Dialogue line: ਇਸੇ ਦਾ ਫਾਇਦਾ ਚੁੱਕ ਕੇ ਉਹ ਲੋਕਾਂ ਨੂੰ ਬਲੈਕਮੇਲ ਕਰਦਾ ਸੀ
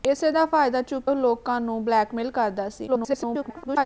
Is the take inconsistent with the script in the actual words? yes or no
yes